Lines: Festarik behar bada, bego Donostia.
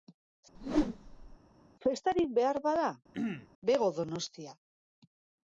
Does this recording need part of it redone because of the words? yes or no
no